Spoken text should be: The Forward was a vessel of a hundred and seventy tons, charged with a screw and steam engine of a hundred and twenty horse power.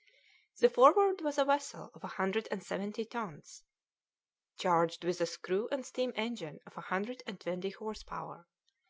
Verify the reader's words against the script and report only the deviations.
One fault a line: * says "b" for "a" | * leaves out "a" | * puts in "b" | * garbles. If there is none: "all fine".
all fine